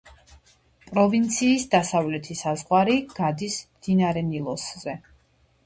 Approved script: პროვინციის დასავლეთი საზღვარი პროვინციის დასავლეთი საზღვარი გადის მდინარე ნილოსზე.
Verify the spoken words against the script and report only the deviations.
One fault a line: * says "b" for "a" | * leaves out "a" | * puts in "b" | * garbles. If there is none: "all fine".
* leaves out "პროვინციის დასავლეთი საზღვარი"